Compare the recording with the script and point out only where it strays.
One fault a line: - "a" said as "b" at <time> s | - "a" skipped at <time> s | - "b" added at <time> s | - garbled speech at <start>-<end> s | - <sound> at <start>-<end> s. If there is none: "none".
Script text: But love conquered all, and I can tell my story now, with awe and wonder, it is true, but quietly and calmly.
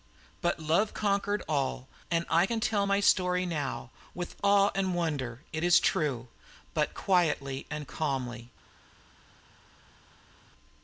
none